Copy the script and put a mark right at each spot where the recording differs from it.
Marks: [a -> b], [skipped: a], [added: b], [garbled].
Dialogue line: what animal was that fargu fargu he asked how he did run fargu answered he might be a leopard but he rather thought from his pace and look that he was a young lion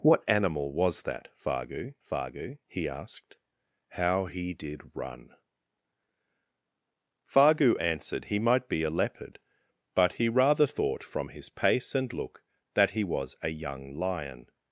what animal was that fargu fargu he asked how he did run fargu answered he might be a leopard but he rather thought from his pace and look that he was a young lion